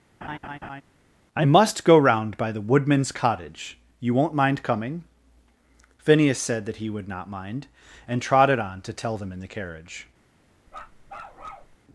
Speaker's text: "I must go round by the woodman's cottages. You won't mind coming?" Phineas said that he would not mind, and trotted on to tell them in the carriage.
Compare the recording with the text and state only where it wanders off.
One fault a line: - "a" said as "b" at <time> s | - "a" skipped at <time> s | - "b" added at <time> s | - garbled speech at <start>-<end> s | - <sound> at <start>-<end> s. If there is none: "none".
- laugh at 0.2-0.8 s
- "cottages" said as "cottage" at 3.1 s
- bark at 10.7-11.8 s